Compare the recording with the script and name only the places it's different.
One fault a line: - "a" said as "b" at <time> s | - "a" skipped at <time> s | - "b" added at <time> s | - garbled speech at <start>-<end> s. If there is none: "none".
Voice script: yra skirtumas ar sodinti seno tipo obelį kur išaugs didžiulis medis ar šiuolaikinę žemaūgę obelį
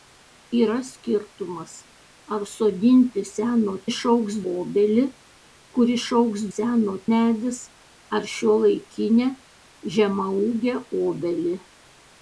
- "tipo" said as "išaugs" at 3.9 s
- "didžiulis" said as "seno" at 6.5 s